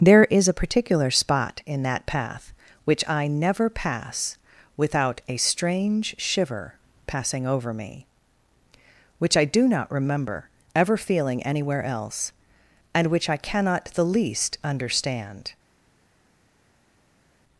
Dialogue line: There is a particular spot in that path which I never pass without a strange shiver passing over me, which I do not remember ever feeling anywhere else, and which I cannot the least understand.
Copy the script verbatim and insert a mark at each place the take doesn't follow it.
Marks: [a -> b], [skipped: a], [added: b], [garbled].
There is a particular spot in that path which I never pass without a strange shiver passing over me, which I do not remember ever feeling anywhere else, and which I cannot the least understand.